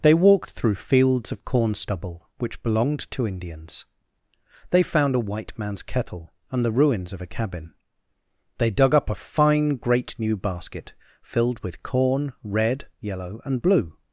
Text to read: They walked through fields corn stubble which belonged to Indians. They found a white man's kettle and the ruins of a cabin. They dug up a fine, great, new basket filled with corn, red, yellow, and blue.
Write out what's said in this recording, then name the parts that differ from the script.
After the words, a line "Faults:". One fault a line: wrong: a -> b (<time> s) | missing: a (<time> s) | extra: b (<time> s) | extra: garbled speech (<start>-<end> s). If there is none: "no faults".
They walked through fields of corn stubble which belonged to Indians. They found a white man's kettle and the ruins of a cabin. They dug up a fine, great, new basket filled with corn, red, yellow, and blue.
Faults:
extra: of (1.3 s)